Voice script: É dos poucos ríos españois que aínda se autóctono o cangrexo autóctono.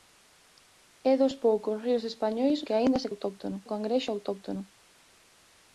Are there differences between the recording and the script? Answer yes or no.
no